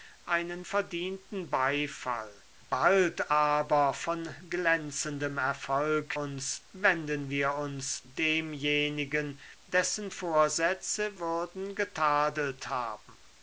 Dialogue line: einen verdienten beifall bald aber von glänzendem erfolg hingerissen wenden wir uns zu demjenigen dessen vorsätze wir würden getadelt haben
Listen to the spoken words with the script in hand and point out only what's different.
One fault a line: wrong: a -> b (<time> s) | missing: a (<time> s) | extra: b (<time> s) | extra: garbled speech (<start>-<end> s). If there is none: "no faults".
wrong: hingerissen -> uns (6.1 s)
missing: zu (8.1 s)
missing: wir (11.2 s)